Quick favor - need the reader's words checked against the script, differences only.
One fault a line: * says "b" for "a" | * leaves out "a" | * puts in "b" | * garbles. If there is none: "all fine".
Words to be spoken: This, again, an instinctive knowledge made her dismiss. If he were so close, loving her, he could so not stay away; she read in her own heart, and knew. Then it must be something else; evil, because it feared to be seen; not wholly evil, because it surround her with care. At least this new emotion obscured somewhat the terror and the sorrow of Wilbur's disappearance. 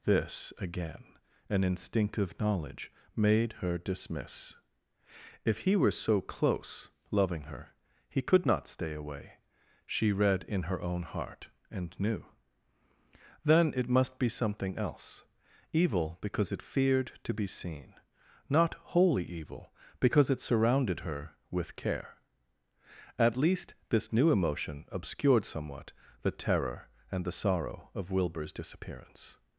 * leaves out "so"
* says "surrounded" for "surround"